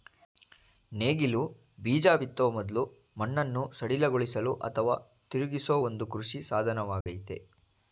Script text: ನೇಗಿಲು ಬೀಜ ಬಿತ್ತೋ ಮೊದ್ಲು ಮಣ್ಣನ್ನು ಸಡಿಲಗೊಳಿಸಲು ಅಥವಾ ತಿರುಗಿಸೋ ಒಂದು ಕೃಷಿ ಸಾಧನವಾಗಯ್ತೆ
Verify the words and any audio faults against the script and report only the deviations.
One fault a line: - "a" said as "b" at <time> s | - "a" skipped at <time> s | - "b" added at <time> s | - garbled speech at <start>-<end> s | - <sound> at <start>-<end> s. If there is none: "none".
- dropout at 7.0-7.1 s